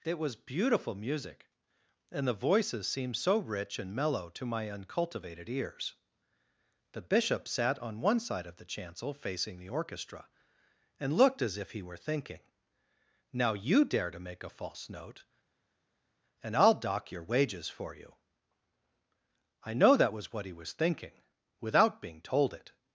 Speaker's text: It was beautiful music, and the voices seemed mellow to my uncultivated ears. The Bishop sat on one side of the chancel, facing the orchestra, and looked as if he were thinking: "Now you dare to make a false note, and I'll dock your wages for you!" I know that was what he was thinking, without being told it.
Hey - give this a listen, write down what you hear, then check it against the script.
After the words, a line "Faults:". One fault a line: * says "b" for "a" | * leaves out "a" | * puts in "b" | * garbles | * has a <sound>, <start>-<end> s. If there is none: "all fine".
It was beautiful music, and the voices seemed so rich and mellow to my uncultivated ears. The Bishop sat on one side of the chancel, facing the orchestra, and looked as if he were thinking: "Now you dare to make a false note, and I'll dock your wages for you!" I know that was what he was thinking, without being told it.
Faults:
* puts in "so rich and"